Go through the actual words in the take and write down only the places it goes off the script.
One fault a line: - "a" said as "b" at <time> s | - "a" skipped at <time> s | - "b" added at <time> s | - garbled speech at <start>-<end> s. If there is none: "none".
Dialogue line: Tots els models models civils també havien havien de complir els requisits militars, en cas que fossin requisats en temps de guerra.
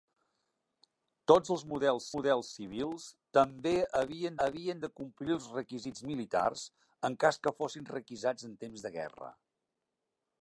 none